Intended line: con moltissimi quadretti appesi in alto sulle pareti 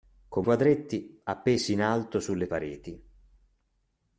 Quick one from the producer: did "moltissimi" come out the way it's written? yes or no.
no